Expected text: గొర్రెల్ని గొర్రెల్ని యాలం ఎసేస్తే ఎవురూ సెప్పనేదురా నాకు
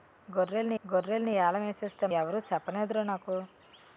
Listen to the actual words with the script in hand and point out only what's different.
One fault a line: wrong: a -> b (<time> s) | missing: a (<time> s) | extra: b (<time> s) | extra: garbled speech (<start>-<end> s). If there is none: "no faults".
no faults